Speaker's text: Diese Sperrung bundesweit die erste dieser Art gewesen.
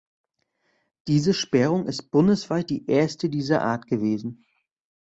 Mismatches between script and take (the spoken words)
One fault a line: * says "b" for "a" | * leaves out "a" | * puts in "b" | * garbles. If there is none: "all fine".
* puts in "ist"